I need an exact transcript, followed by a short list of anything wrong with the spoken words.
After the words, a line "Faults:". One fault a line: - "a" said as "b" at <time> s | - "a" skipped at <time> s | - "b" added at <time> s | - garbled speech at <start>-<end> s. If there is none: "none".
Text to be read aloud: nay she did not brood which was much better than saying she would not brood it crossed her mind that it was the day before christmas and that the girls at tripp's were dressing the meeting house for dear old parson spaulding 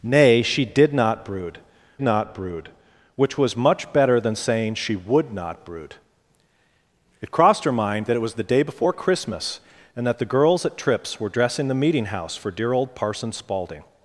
nay she did not brood not brood which was much better than saying she would not brood it crossed her mind that it was the day before christmas and that the girls at tripp's were dressing the meeting house for dear old parson spaulding
Faults:
- "not brood" added at 2.0 s